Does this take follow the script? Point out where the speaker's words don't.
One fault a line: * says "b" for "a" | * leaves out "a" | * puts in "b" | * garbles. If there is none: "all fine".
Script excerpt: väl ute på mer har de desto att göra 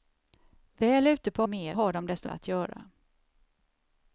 all fine